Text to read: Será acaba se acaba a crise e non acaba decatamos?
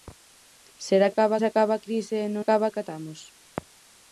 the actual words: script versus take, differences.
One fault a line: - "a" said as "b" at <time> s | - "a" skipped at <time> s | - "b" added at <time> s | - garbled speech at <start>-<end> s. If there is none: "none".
none